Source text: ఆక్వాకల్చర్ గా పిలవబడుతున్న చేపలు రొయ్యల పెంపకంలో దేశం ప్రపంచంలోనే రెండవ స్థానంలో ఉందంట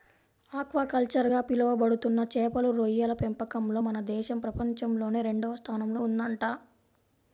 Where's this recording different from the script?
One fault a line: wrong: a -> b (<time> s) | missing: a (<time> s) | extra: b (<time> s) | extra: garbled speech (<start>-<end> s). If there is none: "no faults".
extra: మన (3.8 s)